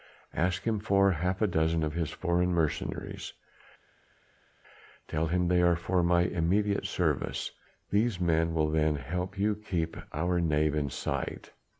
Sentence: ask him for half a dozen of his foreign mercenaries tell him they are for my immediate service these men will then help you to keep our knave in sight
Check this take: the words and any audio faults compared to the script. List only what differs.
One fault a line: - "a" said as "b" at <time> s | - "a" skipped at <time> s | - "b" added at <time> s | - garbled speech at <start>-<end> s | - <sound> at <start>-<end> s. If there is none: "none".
none